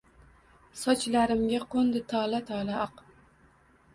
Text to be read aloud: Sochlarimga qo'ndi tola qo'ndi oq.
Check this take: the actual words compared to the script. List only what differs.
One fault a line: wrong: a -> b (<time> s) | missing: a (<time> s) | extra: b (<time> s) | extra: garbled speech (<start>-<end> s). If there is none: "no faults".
wrong: qo'ndi -> tola (2.5 s)